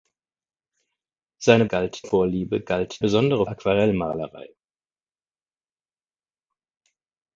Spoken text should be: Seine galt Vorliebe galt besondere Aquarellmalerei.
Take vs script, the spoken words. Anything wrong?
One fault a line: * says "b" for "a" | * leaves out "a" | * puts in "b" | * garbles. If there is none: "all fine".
all fine